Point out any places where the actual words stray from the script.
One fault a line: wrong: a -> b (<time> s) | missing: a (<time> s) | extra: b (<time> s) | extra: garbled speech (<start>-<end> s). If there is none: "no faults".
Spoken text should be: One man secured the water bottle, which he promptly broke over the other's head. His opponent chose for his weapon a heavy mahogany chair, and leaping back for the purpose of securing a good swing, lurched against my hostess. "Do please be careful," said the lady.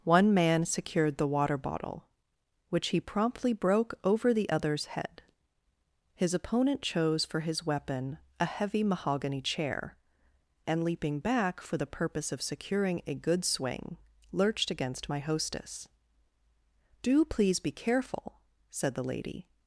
no faults